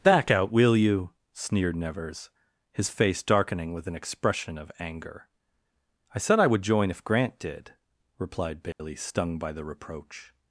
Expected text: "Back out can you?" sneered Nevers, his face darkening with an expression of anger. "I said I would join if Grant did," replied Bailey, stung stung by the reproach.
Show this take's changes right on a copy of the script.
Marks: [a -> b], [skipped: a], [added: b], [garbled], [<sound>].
"Back out [can -> will] you?" sneered Nevers, his face darkening with an expression of anger. "I said I would join if Grant did," replied Bailey, [dropout] stung [skipped: stung] by the reproach.